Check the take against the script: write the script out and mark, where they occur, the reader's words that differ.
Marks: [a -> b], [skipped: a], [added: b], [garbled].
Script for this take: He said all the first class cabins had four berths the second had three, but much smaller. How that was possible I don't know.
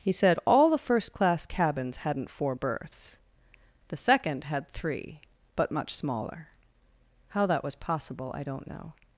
He said all the first class cabins [had -> hadn't] four berths the second had three, but much smaller. How that was possible I don't know.